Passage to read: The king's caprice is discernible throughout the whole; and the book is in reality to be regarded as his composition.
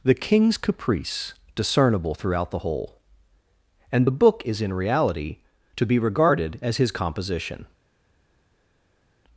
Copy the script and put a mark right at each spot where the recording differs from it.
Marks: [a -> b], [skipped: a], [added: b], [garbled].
The king's caprice [skipped: is] discernible throughout the whole; and the book is in reality to be regarded as his composition.